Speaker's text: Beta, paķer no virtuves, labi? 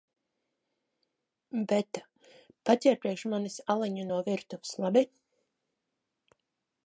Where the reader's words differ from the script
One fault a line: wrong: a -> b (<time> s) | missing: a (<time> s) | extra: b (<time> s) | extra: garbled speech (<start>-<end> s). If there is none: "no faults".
extra: priekš manis aliņu (3.0 s)